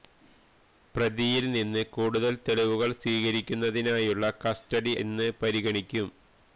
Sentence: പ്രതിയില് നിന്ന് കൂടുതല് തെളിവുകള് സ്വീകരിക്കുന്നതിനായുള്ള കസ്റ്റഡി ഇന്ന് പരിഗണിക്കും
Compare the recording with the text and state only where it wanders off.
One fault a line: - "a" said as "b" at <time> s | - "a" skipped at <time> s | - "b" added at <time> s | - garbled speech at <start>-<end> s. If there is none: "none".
none